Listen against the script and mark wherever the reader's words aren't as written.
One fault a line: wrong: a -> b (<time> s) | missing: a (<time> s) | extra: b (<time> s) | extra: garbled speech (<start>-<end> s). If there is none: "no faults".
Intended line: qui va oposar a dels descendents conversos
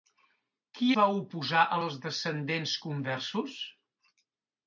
no faults